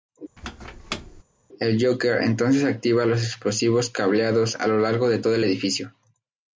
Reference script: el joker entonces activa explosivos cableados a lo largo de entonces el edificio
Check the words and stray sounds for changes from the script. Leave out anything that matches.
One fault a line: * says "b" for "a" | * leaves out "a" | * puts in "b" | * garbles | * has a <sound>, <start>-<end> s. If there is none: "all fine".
* has a squeak, 0.4-1.2 s
* puts in "los"
* says "todo" for "entonces"